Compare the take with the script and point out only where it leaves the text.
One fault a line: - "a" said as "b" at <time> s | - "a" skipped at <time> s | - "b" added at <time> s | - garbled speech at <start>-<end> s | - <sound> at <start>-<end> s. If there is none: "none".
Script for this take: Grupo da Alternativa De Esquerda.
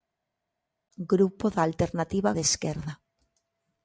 none